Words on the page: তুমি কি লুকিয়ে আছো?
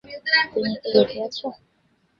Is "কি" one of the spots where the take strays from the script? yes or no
no